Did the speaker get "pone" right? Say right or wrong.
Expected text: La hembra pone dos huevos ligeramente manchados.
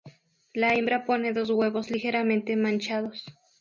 right